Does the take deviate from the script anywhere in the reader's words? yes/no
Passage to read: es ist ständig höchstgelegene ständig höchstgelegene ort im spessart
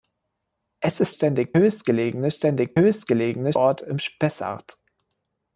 no